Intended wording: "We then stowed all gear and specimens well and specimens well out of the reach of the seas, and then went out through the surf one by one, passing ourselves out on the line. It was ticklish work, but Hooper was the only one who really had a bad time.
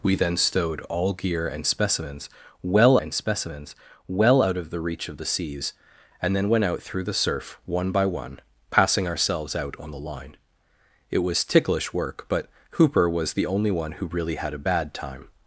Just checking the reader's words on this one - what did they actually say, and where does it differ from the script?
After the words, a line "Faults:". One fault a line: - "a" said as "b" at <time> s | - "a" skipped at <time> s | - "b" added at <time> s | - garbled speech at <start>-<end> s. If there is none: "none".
"We then stowed all gear and specimens well and specimens well out of the reach of the seas, and then went out through the surf one by one, passing ourselves out on the line. It was ticklish work, but Hooper was the only one who really had a bad time.
Faults:
none